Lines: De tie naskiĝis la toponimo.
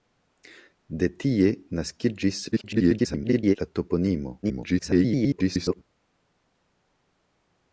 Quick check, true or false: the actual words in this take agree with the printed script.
false